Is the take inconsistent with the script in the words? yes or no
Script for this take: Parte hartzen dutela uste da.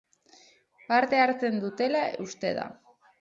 no